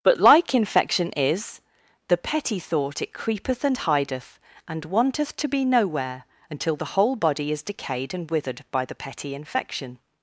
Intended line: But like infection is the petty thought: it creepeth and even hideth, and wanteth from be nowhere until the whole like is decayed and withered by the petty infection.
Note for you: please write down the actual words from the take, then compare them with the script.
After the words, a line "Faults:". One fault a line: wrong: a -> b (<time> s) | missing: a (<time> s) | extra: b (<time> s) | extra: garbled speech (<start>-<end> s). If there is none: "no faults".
But like infection is the petty thought: it creepeth and hideth, and wanteth to be nowhere until the whole body is decayed and withered by the petty infection.
Faults:
missing: even (3.8 s)
wrong: from -> to (5.3 s)
wrong: like -> body (7.2 s)